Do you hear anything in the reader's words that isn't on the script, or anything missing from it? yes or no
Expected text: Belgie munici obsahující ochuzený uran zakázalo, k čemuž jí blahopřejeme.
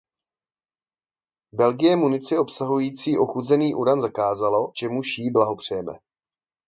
yes